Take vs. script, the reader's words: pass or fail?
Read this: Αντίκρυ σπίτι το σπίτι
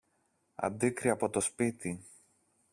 fail